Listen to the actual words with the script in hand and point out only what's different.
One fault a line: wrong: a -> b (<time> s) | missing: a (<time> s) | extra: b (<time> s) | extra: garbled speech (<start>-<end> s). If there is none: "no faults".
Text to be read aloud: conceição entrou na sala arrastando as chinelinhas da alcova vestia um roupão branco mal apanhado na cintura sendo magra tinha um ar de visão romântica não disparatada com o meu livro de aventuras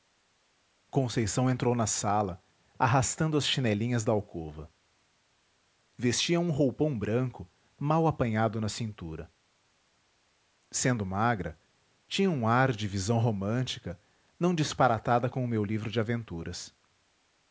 no faults